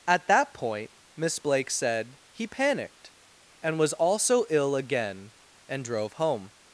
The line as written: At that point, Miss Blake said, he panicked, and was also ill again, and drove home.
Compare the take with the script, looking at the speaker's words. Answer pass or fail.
pass